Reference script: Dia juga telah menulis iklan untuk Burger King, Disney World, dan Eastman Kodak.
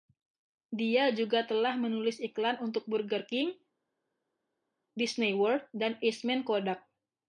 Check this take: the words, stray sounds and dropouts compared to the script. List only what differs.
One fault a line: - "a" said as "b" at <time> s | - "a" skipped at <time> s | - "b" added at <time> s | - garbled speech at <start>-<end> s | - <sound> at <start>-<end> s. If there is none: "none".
none